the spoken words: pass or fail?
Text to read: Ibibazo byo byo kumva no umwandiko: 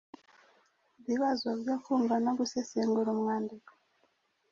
fail